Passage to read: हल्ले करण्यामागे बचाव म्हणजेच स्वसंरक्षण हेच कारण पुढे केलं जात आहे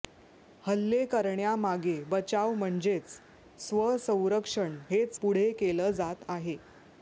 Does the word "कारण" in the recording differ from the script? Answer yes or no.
yes